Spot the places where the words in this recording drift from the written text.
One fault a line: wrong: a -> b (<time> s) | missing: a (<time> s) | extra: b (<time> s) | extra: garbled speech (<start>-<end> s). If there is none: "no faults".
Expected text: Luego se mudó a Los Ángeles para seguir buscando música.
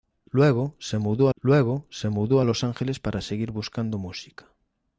extra: luego se mudó (1.4 s)